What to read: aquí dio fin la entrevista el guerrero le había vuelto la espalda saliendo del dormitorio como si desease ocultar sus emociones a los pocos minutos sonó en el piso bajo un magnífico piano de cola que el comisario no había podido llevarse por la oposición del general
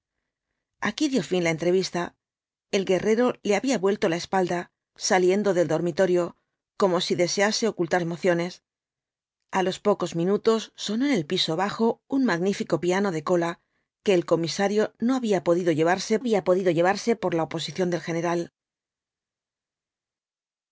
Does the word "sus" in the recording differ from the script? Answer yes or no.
yes